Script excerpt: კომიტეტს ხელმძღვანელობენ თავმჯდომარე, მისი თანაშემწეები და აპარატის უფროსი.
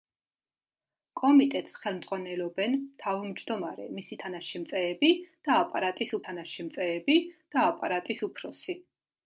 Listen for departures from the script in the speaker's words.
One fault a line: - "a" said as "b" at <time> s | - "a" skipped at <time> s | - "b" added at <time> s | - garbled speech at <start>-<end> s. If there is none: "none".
- "თანაშემწეები და აპარატის" added at 6.3 s